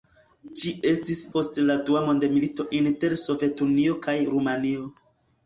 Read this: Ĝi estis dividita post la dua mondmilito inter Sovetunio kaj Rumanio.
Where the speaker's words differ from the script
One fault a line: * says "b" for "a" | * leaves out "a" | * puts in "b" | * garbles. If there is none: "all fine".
* leaves out "dividita"